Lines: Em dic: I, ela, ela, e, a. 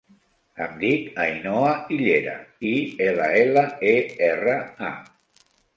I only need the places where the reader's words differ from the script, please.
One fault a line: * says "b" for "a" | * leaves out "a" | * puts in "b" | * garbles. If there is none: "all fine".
* puts in "Ainhoa Illera"
* puts in "erra"